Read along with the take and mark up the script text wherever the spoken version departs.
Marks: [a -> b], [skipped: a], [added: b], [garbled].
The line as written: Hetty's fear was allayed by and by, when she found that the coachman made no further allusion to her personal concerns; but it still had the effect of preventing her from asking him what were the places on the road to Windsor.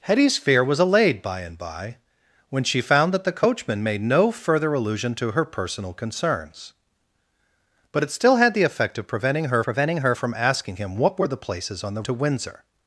Hetty's fear was allayed by and by, when she found that the coachman made no further allusion to her personal concerns; but it still had the effect of preventing her [added: preventing her] from asking him what were the places on the [skipped: road] to Windsor.